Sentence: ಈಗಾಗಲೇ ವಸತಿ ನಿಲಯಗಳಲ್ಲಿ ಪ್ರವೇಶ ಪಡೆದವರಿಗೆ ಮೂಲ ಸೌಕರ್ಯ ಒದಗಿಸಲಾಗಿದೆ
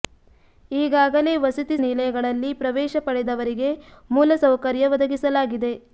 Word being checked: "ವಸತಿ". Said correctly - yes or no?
yes